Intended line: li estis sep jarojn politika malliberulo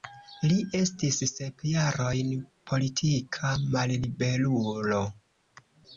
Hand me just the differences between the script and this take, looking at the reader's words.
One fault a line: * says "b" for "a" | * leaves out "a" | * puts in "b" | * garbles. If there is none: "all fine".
all fine